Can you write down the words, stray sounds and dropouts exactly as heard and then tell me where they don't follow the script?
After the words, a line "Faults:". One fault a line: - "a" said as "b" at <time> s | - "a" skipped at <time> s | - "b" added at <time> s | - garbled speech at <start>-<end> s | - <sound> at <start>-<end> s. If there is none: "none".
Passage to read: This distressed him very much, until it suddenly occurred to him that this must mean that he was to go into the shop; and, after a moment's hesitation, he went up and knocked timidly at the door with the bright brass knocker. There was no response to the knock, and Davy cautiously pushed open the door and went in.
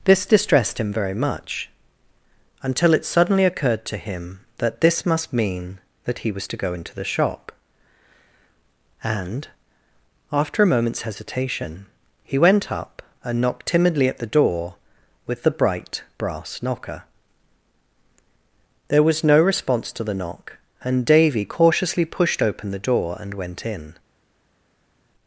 This distressed him very much, until it suddenly occurred to him that this must mean that he was to go into the shop; and, after a moment's hesitation, he went up and knocked timidly at the door with the bright brass knocker. There was no response to the knock, and Davy cautiously pushed open the door and went in.
Faults:
none